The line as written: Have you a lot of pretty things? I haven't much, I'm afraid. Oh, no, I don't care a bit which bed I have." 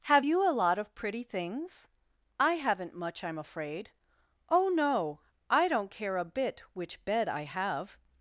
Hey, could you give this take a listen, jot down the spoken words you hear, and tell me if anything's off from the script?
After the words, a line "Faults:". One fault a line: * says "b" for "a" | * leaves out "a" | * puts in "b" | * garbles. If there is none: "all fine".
Have you a lot of pretty things? I haven't much, I'm afraid. Oh, no, I don't care a bit which bed I have."
Faults:
all fine